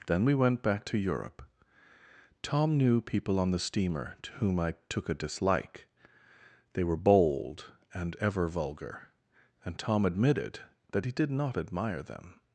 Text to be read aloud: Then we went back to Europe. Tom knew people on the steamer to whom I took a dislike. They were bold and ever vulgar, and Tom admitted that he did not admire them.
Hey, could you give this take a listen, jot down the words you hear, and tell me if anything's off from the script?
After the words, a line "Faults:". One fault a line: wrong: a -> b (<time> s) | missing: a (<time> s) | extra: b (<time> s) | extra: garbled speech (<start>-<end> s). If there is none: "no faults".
Then we went back to Europe. Tom knew people on the steamer to whom I took a dislike. They were bold and ever vulgar, and Tom admitted that he did not admire them.
Faults:
no faults